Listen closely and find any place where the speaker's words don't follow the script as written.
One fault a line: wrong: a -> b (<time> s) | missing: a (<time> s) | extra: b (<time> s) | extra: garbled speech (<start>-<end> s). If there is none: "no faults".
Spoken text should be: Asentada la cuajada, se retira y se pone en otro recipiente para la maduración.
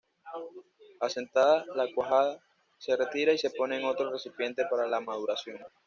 no faults